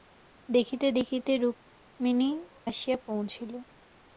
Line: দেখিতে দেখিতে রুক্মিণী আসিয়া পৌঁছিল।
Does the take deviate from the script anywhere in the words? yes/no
no